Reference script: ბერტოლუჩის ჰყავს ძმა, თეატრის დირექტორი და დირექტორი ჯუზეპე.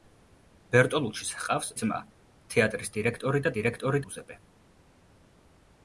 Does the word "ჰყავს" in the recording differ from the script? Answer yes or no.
no